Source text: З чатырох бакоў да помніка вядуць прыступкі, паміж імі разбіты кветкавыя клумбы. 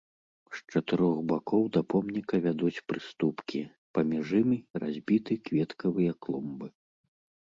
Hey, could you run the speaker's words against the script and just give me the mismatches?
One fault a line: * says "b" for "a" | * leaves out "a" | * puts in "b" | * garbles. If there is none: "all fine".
all fine